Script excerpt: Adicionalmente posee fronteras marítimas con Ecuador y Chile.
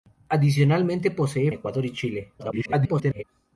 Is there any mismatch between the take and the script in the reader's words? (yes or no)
yes